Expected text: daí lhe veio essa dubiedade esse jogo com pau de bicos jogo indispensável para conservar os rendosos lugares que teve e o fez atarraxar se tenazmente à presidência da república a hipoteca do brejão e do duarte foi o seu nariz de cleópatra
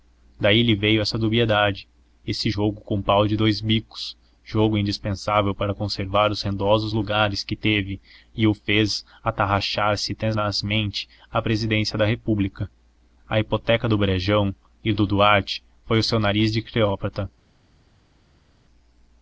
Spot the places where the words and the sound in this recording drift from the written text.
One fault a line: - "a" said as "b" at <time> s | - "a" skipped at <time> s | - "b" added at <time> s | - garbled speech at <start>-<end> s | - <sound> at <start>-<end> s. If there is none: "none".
- "dous" added at 3.4 s